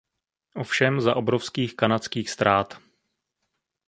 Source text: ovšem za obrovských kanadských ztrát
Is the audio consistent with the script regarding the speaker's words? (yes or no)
yes